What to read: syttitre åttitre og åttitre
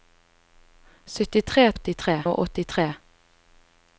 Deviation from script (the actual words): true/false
false